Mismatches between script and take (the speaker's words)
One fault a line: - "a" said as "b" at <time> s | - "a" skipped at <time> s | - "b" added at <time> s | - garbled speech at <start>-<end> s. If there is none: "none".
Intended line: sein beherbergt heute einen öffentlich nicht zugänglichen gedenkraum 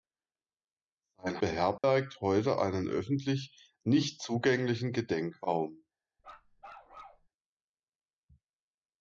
none